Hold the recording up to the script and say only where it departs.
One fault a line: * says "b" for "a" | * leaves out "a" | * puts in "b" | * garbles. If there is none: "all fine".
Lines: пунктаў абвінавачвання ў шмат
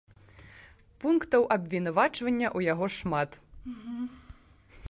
* puts in "яго"